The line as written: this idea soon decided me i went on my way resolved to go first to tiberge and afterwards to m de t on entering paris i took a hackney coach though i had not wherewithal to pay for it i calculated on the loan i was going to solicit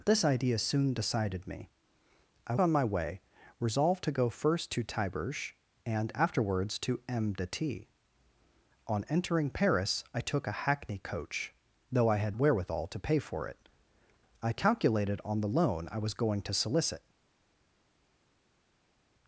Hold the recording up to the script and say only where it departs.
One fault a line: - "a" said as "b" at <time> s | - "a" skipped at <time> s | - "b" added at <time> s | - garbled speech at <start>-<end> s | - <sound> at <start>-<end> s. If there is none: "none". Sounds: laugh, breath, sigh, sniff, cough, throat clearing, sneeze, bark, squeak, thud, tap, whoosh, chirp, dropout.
- "went" skipped at 2.5 s
- "not" skipped at 12.4 s